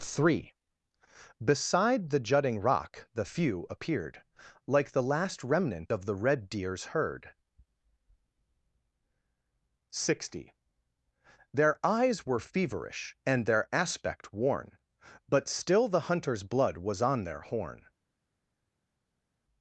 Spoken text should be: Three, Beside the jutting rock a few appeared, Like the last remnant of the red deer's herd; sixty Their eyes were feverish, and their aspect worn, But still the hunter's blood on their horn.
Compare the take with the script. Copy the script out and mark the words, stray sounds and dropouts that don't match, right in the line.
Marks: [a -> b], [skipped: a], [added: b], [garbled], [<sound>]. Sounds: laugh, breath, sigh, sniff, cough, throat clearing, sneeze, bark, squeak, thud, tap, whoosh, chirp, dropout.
Three, Beside the jutting rock [a -> the] few appeared, Like the last remnant of the red deer's herd; sixty Their eyes were feverish, and their aspect worn, But still the hunter's blood [added: was] on their horn.